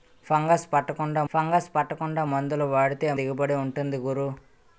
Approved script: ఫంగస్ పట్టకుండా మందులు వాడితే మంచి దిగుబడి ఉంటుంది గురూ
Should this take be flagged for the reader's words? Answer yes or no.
yes